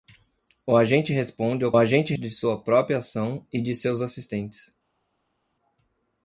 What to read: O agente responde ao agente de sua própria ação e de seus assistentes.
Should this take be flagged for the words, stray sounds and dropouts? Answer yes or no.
no